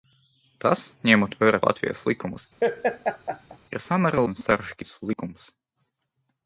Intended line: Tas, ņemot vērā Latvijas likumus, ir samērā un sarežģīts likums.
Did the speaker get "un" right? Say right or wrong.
right